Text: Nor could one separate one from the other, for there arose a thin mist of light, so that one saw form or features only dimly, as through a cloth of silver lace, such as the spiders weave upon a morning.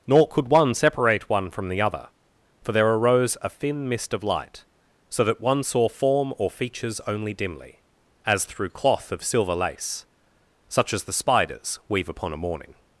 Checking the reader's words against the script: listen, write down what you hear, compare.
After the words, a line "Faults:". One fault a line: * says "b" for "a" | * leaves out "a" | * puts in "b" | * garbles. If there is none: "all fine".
Nor could one separate one from the other, for there arose a thin mist of light, so that one saw form or features only dimly, as through cloth of silver lace, such as the spiders weave upon a morning.
Faults:
* leaves out "a"